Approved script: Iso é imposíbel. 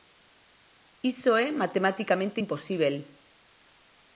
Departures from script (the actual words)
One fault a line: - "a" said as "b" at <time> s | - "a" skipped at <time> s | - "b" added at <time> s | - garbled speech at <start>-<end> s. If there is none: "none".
- "matematicamente" added at 1.6 s